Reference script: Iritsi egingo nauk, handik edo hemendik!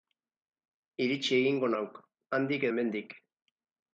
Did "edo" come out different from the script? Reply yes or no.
yes